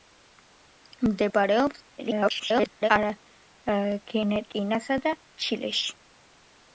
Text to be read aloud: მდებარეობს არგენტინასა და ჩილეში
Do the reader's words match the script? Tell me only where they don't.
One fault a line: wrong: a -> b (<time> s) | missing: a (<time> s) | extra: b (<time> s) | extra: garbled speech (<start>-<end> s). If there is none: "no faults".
extra: garbled speech (2.0-2.9 s)